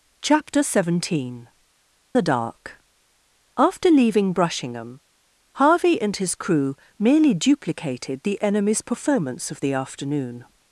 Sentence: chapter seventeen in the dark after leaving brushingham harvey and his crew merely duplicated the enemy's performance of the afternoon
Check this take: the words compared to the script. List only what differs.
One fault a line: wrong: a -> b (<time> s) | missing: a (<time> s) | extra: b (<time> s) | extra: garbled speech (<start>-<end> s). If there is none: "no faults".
missing: in (1.5 s)